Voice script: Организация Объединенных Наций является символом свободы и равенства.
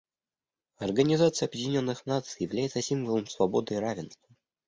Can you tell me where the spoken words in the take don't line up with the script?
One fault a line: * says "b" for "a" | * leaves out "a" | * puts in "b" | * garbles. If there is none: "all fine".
all fine